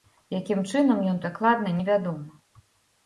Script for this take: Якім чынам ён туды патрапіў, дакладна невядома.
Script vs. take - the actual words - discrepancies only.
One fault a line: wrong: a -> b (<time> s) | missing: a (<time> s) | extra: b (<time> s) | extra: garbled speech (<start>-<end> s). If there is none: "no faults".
missing: туды патрапіў (1.2 s)